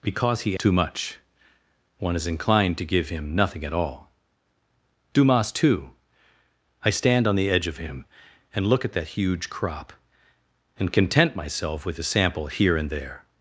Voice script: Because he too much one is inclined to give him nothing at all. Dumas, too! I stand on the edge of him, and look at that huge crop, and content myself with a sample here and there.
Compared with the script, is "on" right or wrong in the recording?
right